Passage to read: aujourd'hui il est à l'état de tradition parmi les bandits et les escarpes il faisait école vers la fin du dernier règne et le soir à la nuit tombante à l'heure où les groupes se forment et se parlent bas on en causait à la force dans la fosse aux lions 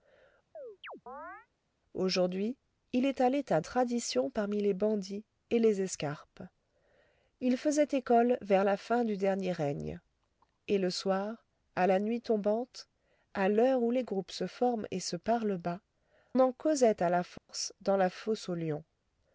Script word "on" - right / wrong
wrong